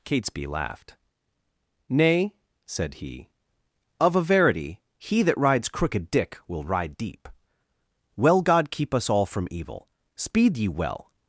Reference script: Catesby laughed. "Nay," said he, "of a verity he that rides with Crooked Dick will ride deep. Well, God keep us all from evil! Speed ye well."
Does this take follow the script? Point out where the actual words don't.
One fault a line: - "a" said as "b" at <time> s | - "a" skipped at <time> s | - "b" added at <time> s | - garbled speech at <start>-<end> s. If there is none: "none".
- "with" skipped at 5.7 s